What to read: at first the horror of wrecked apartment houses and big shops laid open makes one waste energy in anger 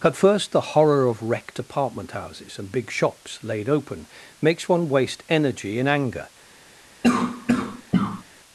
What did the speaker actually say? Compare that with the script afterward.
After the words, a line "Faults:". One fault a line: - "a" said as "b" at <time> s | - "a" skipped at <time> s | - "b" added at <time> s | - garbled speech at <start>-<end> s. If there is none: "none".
at first the horror of wrecked apartment houses and big shops laid open makes one waste energy in anger
Faults:
none